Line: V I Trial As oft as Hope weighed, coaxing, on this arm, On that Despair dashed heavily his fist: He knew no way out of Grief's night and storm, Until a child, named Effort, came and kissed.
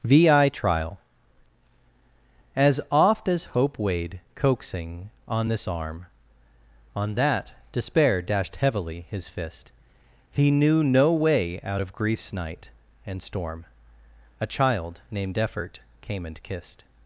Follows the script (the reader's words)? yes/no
no